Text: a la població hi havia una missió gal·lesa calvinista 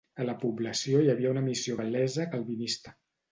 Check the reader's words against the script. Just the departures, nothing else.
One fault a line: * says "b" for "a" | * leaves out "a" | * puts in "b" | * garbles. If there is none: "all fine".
all fine